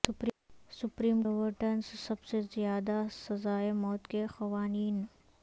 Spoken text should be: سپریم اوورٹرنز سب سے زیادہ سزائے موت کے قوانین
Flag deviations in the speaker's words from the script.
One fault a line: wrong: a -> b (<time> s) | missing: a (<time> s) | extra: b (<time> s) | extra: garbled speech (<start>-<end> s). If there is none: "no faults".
no faults